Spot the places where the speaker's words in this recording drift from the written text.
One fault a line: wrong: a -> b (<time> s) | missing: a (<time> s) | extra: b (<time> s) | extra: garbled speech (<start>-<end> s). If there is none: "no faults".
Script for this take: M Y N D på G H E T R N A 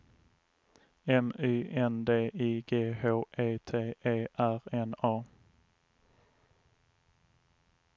wrong: på -> I (2.3 s)
extra: E (4.0 s)